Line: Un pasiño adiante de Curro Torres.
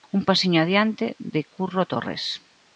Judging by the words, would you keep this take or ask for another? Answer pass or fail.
pass